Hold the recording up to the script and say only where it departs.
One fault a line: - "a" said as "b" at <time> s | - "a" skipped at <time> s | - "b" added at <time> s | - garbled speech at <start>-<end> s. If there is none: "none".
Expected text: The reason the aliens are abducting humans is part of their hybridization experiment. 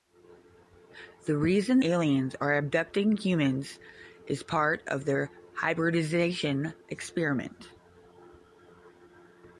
- "the" skipped at 1.8 s